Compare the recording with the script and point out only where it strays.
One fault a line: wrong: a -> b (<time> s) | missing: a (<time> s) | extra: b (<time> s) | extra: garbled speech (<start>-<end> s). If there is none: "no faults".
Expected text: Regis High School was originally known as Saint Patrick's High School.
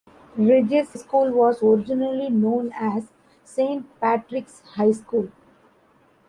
missing: High (0.9 s)